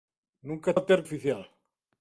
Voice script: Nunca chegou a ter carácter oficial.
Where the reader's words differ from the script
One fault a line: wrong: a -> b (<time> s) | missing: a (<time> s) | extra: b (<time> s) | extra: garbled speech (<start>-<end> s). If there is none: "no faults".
missing: chegou (0.8 s)
missing: carácter (1.0 s)